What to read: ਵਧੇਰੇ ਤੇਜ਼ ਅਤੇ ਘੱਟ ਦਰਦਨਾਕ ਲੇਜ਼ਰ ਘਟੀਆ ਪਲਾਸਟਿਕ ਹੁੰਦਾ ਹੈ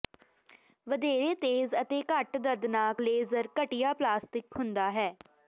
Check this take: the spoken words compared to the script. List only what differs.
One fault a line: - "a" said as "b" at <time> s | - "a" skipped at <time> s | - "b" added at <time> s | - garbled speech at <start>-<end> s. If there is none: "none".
none